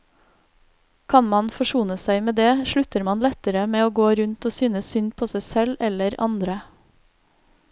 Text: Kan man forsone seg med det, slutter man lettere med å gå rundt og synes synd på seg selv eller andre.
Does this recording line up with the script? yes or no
yes